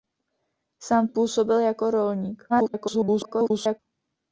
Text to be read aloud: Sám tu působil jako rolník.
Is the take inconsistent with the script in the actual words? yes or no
yes